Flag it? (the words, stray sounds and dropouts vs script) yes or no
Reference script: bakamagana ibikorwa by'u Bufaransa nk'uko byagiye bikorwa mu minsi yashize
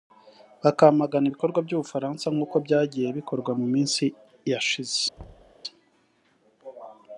yes